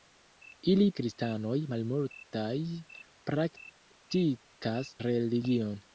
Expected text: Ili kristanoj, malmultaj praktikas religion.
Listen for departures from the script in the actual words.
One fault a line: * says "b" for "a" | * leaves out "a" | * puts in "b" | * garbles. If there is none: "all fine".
all fine